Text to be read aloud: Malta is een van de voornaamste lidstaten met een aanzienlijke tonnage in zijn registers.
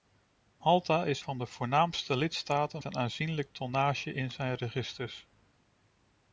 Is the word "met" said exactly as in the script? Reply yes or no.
no